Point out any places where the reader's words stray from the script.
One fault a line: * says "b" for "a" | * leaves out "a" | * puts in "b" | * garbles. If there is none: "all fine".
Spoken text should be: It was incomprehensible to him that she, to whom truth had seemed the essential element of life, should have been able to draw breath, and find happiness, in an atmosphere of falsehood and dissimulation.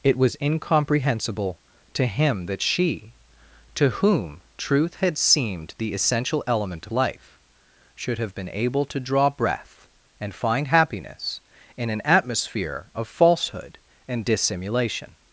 * leaves out "of"